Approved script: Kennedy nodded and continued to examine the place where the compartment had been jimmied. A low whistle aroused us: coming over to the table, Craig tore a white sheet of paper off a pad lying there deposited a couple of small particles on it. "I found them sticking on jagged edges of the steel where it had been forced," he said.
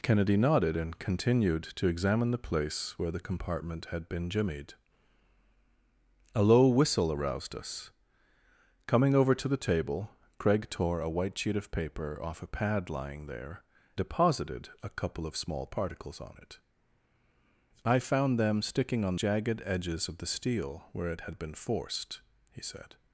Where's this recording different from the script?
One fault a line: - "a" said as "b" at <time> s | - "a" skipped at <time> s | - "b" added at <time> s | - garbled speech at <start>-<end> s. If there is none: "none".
none